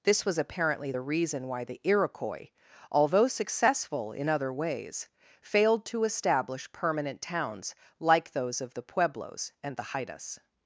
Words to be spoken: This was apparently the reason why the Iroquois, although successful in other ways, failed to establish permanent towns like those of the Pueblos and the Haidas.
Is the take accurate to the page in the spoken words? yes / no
yes